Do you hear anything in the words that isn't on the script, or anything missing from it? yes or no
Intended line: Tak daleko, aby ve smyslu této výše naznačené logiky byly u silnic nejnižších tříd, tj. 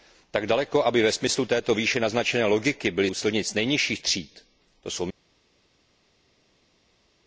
no